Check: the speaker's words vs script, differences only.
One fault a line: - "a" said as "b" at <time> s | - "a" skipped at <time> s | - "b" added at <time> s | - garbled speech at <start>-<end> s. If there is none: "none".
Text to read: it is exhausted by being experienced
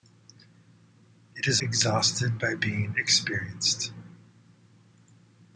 none